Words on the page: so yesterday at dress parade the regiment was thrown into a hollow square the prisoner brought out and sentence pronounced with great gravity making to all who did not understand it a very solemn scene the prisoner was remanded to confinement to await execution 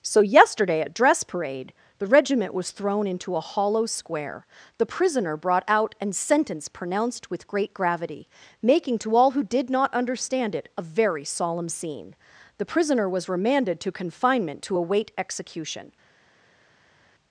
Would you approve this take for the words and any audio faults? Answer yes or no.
yes